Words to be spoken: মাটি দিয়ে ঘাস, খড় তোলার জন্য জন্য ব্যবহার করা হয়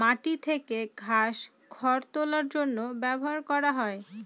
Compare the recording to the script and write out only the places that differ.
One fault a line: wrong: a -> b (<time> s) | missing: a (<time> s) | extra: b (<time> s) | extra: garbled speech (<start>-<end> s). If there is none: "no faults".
wrong: দিয়ে -> থেকে (0.5 s)
missing: জন্য (2.8 s)